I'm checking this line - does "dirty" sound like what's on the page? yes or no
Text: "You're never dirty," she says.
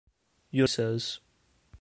no